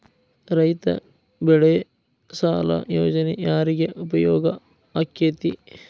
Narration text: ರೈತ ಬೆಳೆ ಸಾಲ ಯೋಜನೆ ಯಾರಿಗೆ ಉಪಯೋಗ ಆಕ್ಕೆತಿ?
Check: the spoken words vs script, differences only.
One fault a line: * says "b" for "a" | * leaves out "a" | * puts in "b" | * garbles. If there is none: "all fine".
all fine